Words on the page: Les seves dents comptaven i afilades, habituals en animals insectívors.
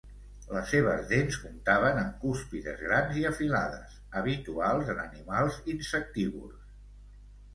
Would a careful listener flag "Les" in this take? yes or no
no